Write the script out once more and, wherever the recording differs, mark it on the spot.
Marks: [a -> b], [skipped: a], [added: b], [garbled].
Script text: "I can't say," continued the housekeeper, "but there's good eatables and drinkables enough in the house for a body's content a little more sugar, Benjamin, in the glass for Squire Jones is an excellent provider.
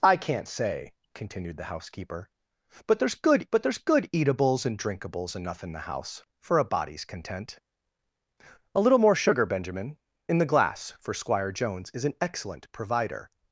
"I can't say," continued the housekeeper, "but there's good [added: but there's good] eatables and drinkables enough in the house for a body's content a little more sugar, Benjamin, in the glass for Squire Jones is an excellent provider.